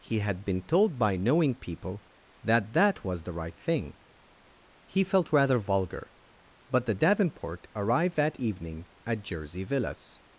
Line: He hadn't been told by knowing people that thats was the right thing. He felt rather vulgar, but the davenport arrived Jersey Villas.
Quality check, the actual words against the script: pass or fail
fail